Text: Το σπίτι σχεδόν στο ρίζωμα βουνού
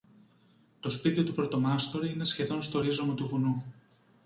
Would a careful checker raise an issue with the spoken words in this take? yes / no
yes